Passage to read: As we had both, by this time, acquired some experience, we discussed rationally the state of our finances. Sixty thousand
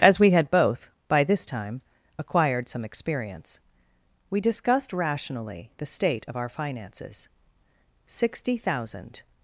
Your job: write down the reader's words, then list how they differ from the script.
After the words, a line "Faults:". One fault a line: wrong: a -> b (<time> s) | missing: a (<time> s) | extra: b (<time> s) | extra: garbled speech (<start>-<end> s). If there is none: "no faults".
As we had both, by this time, acquired some experience, we discussed rationally the state of our finances. Sixty thousand
Faults:
no faults